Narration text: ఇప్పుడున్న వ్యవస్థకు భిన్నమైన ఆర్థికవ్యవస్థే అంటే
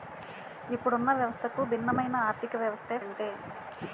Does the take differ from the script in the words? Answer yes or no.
no